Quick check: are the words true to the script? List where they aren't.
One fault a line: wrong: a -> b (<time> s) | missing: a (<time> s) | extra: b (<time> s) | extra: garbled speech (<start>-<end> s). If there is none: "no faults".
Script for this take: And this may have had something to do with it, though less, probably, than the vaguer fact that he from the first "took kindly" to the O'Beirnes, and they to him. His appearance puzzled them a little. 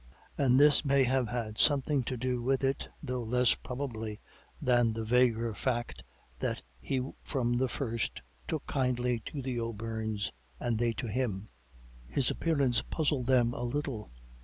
no faults